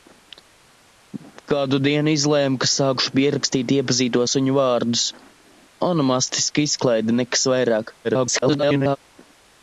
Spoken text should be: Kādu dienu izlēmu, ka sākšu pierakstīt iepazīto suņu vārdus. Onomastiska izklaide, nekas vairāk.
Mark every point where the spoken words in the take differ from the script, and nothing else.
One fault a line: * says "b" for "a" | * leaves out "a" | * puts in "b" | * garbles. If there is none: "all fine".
* garbles